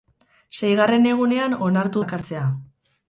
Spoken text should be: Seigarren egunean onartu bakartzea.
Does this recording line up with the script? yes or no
yes